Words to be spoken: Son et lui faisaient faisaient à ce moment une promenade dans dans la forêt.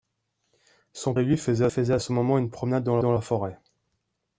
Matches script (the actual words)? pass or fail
pass